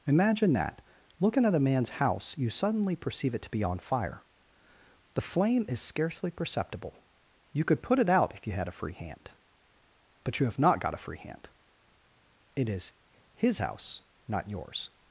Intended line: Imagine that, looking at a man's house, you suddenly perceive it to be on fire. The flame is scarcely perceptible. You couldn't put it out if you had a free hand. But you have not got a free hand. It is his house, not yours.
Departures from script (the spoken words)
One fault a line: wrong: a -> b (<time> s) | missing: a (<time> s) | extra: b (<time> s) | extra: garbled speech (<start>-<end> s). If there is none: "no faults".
wrong: couldn't -> could (7.6 s)